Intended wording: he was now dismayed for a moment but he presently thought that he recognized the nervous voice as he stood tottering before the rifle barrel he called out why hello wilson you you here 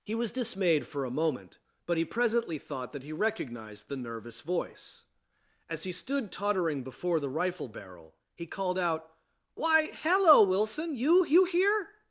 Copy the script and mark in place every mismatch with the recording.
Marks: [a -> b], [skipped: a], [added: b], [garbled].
he was [skipped: now] dismayed for a moment but he presently thought that he recognized the nervous voice as he stood tottering before the rifle barrel he called out why hello wilson you you here